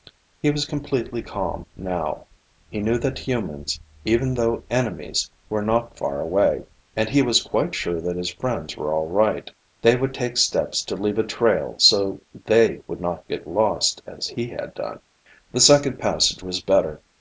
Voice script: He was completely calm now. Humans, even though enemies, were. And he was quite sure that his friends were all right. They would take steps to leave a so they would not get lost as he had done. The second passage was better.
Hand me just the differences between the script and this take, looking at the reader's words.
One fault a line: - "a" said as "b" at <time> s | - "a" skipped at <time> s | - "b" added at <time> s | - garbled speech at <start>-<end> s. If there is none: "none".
- "He knew that" added at 2.7 s
- "not far away" added at 5.6 s
- "trail" added at 11.2 s